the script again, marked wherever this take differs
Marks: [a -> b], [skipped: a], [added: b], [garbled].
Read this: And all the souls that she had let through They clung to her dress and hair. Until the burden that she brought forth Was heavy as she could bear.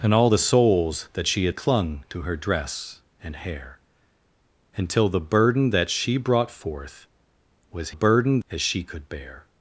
And all the souls that she had [skipped: let through They] clung to her dress and hair. Until the burden that she brought forth Was [heavy -> burden] as she could bear.